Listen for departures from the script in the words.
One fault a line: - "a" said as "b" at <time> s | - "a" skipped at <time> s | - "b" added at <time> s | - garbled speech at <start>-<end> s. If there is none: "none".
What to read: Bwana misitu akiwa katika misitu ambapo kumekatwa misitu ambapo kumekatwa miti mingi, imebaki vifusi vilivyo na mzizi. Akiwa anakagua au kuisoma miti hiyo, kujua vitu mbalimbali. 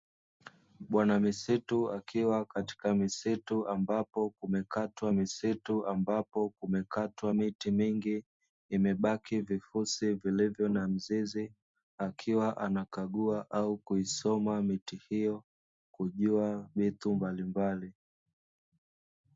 none